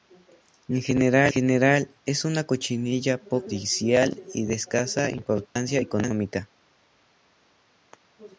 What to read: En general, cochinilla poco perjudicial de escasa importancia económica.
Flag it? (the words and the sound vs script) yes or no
yes